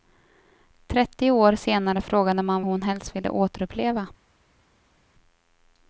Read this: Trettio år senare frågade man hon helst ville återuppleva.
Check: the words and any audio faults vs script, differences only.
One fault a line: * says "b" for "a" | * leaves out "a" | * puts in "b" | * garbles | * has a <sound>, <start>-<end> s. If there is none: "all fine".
all fine